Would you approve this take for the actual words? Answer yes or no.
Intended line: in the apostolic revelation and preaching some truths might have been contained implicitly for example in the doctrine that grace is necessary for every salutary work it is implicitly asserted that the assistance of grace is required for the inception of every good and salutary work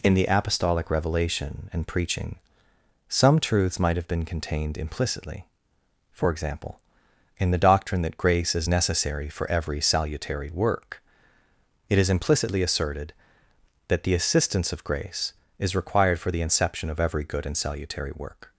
yes